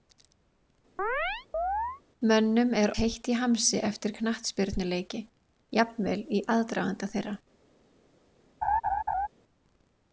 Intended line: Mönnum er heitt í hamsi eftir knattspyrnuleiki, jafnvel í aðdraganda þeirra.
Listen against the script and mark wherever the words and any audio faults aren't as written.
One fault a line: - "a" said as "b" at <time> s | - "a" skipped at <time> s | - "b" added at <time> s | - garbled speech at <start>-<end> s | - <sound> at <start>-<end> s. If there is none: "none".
- chirp at 1.0-2.0 s
- laugh at 8.6-9.3 s